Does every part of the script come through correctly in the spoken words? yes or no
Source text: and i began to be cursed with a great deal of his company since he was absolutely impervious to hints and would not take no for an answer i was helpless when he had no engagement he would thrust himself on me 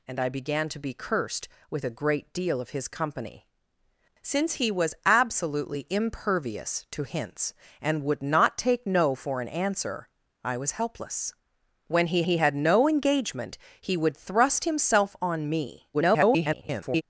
no